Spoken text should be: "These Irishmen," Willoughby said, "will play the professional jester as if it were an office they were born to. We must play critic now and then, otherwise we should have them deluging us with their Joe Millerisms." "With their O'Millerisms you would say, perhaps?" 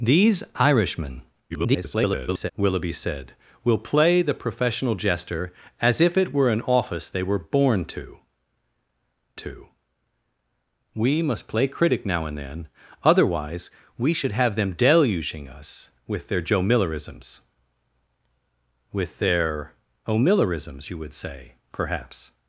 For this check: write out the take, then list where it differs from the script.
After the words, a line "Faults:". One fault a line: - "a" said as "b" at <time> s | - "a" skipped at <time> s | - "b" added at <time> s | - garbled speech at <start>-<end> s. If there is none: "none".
"These Irishmen," [garbled] Willoughby said, "will play the professional jester as if it were an office they were born to to. We must play critic now and then, otherwise we should have them deluging us with their Joe Millerisms." "With their O'Millerisms you would say, perhaps?"
Faults:
- garbled speech at 1.5-2.5 s
- "to" added at 9.3 s